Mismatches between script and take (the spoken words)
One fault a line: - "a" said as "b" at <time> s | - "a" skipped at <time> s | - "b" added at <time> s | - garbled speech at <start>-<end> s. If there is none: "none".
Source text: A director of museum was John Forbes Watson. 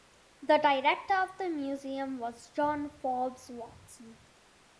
- "A" said as "The" at 0.4 s
- "the" added at 1.4 s